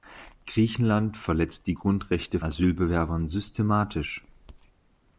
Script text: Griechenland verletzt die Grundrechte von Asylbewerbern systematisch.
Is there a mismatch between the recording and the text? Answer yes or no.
yes